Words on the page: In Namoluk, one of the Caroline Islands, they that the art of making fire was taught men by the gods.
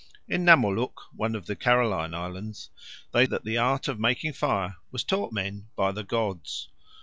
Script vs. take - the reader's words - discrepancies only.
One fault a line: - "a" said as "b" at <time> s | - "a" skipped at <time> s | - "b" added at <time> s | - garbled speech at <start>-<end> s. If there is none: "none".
none